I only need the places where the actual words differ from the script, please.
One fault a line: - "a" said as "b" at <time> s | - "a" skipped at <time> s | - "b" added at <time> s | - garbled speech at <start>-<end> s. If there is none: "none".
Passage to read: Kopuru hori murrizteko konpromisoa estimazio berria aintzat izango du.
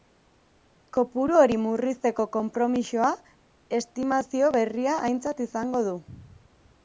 none